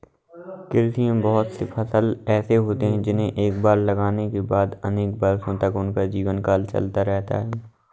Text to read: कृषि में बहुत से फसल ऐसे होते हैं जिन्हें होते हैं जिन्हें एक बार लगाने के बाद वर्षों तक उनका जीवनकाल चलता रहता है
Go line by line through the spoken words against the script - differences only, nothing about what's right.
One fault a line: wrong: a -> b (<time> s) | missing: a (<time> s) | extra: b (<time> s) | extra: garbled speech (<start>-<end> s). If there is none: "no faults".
missing: होते हैं जिन्हें (3.3 s)
extra: अनेक (4.9 s)